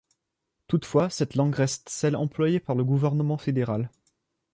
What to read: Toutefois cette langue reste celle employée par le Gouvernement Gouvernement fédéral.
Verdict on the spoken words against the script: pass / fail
fail